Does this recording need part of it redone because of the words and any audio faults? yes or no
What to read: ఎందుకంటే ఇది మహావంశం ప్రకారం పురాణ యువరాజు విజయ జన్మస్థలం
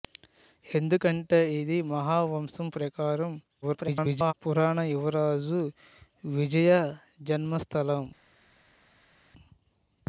yes